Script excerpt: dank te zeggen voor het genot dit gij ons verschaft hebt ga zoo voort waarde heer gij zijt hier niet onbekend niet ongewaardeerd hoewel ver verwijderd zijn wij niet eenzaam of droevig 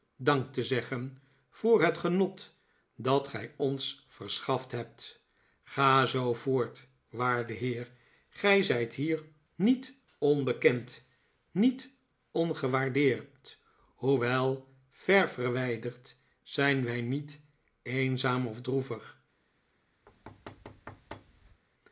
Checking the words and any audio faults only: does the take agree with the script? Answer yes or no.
no